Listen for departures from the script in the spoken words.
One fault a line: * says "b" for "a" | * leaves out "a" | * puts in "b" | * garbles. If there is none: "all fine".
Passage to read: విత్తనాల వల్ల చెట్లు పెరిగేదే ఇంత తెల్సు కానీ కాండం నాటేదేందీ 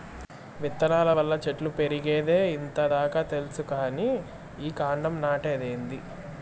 * puts in "దాకా"
* puts in "ఈ"